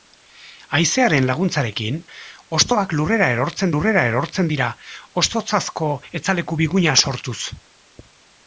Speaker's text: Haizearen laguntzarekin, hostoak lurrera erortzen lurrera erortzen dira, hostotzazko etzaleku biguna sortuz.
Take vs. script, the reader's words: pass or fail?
pass